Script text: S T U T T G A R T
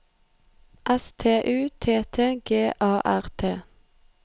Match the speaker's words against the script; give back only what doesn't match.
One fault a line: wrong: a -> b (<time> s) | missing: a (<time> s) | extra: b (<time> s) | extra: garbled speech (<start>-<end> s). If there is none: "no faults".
no faults